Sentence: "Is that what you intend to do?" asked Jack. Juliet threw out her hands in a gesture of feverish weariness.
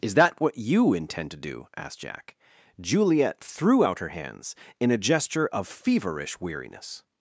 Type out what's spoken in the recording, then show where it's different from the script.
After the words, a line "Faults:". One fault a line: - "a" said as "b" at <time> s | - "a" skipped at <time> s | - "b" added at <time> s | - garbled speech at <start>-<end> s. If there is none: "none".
"Is that what you intend to do?" asked Jack. Juliet threw out her hands in a gesture of feverish weariness.
Faults:
none